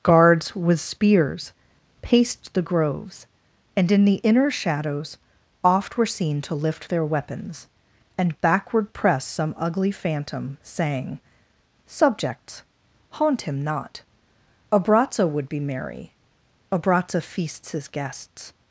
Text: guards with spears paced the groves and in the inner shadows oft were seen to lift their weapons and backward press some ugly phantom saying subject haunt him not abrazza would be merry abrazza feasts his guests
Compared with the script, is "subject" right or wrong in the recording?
wrong